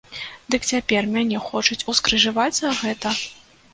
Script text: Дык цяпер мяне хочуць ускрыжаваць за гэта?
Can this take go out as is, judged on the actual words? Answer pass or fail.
pass